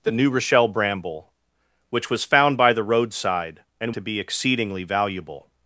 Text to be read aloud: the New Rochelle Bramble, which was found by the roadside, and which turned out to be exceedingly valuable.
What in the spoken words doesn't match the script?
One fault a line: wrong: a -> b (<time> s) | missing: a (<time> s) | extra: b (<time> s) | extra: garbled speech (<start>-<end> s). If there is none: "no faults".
missing: which turned out (3.9 s)